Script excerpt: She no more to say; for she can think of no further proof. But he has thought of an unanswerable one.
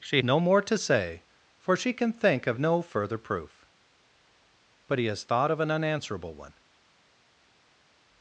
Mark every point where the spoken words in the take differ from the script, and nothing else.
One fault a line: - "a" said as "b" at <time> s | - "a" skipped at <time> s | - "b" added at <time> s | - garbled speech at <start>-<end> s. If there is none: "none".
none